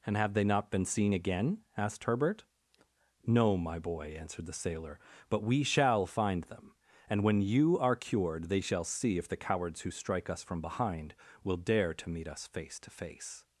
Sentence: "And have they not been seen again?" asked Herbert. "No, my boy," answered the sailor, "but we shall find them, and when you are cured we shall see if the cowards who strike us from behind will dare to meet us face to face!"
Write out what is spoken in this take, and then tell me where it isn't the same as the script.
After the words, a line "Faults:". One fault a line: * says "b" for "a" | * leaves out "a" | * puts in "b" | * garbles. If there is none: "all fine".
"And have they not been seen again?" asked Herbert. "No, my boy," answered the sailor, "but we shall find them, and when you are cured they shall see if the cowards who strike us from behind will dare to meet us face to face!"
Faults:
* says "they" for "we"